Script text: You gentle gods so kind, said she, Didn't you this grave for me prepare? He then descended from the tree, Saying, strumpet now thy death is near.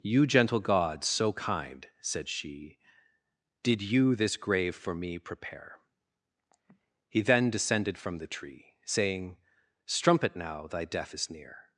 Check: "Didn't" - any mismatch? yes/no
yes